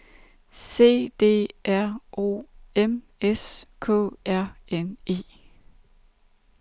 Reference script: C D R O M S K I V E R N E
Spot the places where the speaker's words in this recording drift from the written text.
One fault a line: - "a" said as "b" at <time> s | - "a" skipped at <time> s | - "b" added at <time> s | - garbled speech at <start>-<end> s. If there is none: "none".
- "I V E" skipped at 4.1 s